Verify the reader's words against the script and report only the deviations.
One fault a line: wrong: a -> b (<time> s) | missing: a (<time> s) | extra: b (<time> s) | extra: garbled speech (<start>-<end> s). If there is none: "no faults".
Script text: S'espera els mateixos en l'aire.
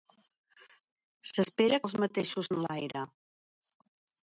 no faults